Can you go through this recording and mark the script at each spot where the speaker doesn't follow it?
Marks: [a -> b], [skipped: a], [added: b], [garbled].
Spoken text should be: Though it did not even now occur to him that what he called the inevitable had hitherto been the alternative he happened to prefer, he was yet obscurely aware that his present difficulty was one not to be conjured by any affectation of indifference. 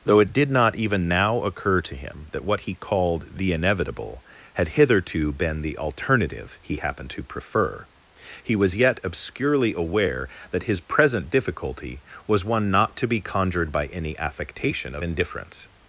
Though it did not even now occur to him that what he called the inevitable had hitherto been the alternative he happened to prefer, he was yet obscurely aware that his present difficulty was one not to be conjured by any affectation of indifference.